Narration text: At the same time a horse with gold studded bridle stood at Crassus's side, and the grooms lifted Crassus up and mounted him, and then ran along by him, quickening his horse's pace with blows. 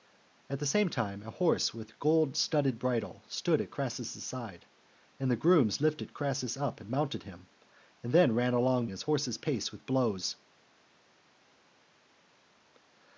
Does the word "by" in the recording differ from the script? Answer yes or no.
yes